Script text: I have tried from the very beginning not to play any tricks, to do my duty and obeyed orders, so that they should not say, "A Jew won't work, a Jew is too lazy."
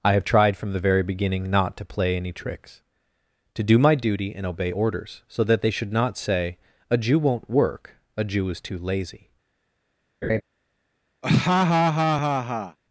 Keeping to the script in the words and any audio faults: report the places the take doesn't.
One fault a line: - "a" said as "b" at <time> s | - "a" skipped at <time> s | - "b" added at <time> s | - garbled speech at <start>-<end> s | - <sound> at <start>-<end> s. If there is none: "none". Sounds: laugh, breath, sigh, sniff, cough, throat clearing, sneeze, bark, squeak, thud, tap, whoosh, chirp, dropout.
- "obeyed" said as "obey" at 4.5 s
- laugh at 10.2-10.4 s
- laugh at 11.2-12.8 s